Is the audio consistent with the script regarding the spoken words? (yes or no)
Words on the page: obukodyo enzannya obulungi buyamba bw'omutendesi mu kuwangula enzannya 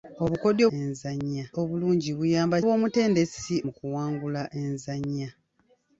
yes